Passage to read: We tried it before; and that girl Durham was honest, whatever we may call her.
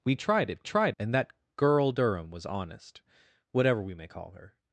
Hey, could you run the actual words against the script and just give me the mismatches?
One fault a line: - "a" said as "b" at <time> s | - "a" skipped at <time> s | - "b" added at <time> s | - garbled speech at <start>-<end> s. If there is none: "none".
- "before" said as "tried" at 0.6 s